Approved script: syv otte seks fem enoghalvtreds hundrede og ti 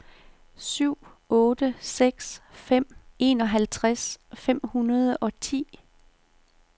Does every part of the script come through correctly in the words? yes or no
no